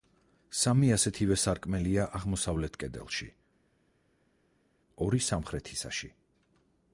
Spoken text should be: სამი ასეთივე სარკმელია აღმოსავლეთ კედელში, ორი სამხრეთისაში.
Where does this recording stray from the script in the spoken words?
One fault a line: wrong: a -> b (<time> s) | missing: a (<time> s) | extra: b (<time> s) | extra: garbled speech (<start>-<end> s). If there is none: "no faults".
no faults